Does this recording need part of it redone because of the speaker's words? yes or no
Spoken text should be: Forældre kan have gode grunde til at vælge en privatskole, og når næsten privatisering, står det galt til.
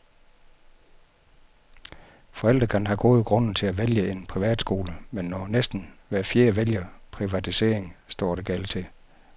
yes